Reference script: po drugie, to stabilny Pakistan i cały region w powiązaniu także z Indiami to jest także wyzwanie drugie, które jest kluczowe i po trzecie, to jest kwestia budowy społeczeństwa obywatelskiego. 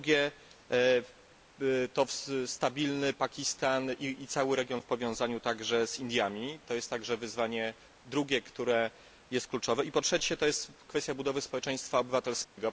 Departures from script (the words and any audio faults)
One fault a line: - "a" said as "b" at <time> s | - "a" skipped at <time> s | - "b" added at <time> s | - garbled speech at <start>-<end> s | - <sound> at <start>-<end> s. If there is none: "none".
- dropout at 12.4-12.6 s